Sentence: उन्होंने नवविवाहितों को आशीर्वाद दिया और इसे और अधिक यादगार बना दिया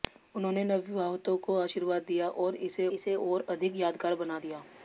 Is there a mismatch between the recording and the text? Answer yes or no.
yes